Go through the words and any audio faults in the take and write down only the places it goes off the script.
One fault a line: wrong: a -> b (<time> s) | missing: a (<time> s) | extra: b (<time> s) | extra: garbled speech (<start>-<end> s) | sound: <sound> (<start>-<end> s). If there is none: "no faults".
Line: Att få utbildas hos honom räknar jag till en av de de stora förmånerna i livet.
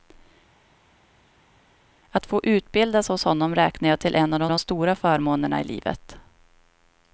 no faults